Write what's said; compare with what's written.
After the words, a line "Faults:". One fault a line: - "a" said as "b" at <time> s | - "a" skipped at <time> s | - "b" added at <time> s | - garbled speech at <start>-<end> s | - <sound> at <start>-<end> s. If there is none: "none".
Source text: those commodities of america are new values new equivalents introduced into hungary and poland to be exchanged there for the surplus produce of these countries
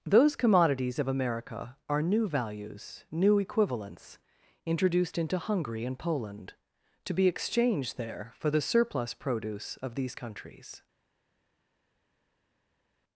those commodities of america are new values new equivalents introduced into hungary and poland to be exchanged there for the surplus produce of these countries
Faults:
none